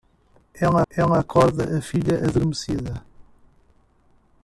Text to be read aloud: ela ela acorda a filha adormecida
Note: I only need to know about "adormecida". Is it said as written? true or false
true